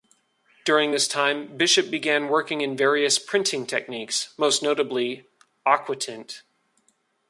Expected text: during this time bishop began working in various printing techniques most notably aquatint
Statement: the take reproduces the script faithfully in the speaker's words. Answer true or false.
true